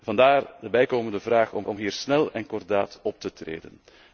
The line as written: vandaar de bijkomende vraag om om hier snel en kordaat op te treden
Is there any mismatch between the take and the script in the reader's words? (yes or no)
no